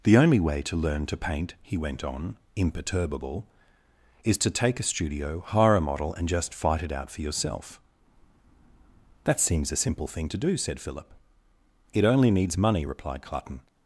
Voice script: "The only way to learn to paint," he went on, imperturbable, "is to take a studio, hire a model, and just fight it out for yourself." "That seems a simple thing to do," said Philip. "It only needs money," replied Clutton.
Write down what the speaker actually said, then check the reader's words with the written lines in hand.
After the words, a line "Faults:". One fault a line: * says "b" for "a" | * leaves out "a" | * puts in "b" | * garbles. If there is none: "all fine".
"The only way to learn to paint," he went on, imperturbable, "is to take a studio, hire a model, and just fight it out for yourself." "That seems a simple thing to do," said Philip. "It only needs money," replied Clutton.
Faults:
all fine